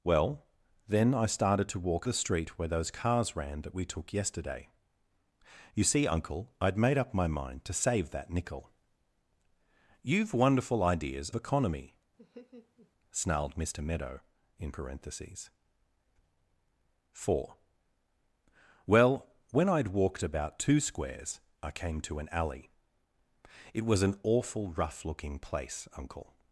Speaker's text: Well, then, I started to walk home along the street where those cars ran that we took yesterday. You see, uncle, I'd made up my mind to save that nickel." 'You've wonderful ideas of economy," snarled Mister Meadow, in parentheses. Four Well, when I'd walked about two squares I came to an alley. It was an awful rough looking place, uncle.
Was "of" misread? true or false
true